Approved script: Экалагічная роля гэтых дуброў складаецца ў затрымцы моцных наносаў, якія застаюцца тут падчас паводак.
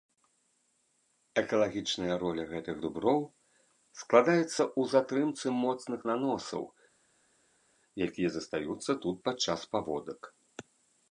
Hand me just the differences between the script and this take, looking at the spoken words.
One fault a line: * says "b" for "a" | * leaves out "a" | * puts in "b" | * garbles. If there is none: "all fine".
all fine